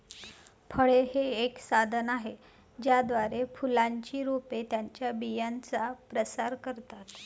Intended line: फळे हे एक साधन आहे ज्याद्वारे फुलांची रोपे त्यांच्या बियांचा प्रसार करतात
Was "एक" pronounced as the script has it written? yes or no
yes